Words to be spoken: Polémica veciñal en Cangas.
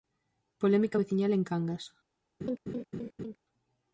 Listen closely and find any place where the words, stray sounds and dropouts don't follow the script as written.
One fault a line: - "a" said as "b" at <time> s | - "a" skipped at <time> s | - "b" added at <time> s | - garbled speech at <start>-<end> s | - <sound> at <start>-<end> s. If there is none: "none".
- laugh at 2.4-3.4 s